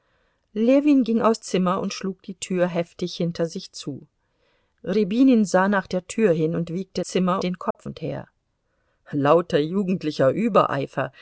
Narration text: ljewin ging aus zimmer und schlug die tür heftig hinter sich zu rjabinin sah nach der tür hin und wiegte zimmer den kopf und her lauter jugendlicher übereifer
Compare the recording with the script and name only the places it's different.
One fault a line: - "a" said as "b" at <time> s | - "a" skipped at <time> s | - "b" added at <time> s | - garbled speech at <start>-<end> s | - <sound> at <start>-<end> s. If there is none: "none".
- dropout at 7.7-7.8 s